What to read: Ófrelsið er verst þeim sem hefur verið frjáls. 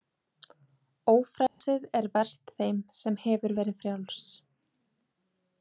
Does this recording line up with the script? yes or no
yes